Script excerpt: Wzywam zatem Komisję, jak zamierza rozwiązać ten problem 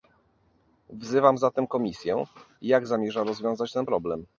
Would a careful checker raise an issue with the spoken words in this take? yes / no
no